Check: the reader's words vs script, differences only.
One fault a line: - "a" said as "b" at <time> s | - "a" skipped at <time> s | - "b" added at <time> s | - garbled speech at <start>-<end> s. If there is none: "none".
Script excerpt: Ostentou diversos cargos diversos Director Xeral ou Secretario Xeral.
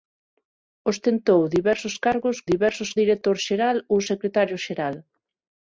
none